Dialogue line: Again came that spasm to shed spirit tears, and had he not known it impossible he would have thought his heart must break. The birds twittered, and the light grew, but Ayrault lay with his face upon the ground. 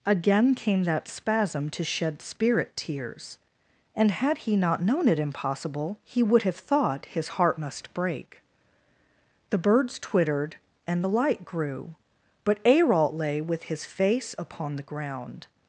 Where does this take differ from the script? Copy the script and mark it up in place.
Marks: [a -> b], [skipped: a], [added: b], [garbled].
Again came that spasm to shed spirit tears, and had he not known it impossible he would have thought his heart must break. The birds twittered, and the light grew, but Ayrault lay with his face upon the ground.